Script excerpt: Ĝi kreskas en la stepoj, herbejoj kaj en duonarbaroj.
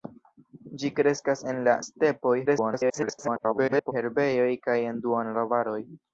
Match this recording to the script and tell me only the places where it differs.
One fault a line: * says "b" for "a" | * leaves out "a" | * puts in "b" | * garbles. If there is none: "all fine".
* garbles